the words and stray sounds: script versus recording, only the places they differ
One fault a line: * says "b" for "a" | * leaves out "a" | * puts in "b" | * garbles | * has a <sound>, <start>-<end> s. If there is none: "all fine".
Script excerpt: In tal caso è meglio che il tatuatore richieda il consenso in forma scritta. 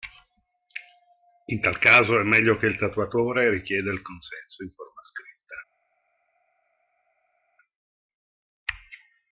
all fine